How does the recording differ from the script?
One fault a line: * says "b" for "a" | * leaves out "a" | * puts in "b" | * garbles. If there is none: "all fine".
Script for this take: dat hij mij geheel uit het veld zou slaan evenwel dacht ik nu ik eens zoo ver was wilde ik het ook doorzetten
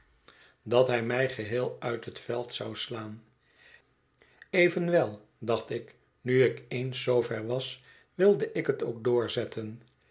all fine